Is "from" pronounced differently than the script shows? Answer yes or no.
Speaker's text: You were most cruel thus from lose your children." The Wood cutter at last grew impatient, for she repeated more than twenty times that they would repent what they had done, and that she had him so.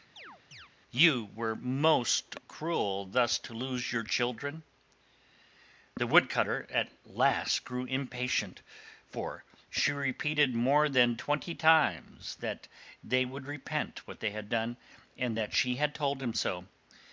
yes